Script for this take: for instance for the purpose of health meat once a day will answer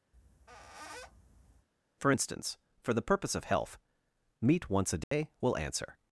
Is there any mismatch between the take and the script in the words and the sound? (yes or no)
yes